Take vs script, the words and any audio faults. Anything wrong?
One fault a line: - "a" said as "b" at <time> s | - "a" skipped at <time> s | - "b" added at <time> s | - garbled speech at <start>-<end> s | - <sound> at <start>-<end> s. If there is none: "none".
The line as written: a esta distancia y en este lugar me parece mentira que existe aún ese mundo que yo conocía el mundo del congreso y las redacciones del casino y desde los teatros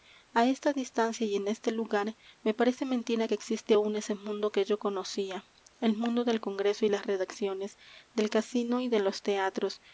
- "desde" said as "de" at 8.9 s